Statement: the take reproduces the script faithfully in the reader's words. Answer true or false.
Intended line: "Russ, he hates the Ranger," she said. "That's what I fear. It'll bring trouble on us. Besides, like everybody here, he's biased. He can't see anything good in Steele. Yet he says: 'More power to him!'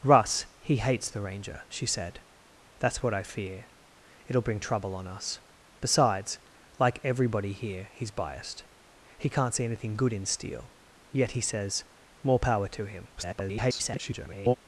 false